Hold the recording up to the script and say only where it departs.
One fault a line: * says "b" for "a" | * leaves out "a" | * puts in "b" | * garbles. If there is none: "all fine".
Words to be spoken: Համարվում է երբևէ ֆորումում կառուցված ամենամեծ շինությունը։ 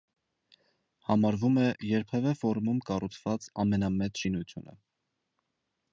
all fine